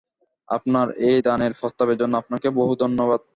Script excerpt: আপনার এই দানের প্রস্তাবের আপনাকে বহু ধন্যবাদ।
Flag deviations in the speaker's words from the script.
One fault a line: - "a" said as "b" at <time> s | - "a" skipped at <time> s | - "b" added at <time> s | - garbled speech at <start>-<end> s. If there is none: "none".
- "জন্য" added at 2.0 s